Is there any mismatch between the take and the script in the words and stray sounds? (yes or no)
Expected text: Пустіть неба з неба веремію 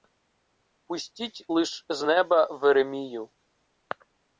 yes